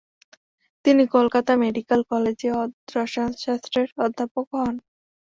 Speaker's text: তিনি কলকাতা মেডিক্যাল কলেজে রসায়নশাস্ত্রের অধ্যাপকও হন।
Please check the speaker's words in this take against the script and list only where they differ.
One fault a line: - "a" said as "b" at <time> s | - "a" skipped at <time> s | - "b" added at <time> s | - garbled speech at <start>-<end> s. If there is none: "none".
none